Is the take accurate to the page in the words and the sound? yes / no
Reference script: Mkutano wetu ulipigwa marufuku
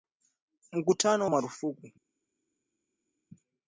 no